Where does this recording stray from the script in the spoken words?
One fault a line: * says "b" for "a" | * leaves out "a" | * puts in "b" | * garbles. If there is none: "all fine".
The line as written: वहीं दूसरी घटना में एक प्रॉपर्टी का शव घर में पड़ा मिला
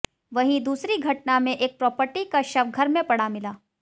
all fine